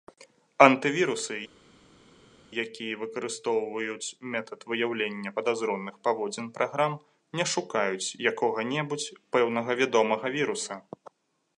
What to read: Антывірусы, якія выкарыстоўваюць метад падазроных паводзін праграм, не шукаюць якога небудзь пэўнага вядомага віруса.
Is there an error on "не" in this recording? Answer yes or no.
no